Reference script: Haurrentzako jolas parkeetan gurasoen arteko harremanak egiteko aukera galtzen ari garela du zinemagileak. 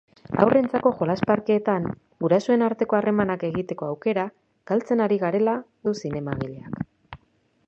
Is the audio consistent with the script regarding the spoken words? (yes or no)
yes